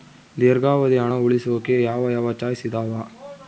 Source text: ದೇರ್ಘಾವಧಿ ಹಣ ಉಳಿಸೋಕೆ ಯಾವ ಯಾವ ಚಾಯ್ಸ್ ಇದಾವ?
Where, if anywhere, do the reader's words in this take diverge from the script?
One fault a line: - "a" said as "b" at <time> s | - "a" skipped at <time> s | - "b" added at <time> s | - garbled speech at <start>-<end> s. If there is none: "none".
none